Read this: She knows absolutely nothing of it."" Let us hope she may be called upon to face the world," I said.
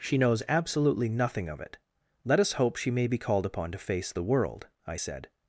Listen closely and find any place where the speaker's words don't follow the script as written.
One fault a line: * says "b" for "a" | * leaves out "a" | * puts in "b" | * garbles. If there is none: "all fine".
all fine